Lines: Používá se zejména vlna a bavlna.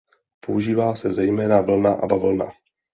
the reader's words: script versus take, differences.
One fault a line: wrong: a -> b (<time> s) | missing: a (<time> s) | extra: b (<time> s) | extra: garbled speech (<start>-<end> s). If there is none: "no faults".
no faults